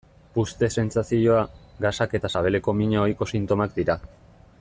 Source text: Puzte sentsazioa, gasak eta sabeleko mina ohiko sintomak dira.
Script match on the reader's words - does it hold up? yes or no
yes